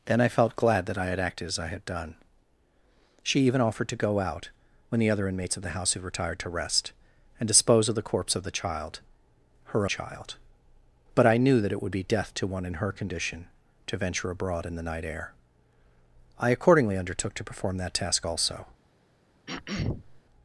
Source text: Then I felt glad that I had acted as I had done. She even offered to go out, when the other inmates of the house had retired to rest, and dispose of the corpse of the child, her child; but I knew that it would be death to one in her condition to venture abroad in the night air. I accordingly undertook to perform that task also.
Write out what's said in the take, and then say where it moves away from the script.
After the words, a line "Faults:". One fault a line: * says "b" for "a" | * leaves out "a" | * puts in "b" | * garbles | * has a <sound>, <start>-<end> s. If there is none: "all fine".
Then I felt glad that I had acted as I had done. She even offered to go out, when the other inmates of the house had retired to rest, and dispose of the corpse of the child, her child; but I knew that it would be death to one in her condition to venture abroad in the night air. I accordingly undertook to perform that task also.
Faults:
* has a throat clearing, 19.5-20.2 s